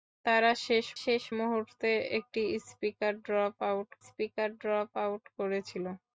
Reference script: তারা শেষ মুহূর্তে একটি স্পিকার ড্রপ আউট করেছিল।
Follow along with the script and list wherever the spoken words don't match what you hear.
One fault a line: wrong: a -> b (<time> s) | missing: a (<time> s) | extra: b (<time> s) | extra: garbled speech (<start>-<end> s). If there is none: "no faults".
extra: শেষ (1.0 s)
extra: স্পিকার ড্রপ আউট (4.0 s)